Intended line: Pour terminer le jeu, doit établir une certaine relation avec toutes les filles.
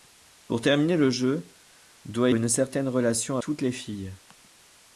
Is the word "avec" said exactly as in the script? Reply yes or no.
no